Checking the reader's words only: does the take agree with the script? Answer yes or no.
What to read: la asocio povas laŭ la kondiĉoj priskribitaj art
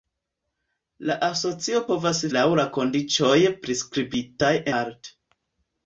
yes